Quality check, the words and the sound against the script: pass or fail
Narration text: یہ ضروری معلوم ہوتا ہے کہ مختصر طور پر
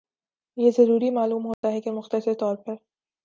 fail